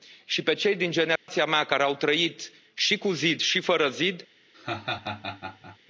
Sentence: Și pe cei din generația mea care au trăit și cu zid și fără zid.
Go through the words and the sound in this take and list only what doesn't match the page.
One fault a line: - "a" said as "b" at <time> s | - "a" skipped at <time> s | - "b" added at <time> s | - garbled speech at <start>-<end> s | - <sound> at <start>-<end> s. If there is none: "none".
- dropout at 1.2-1.3 s
- laugh at 4.5-5.8 s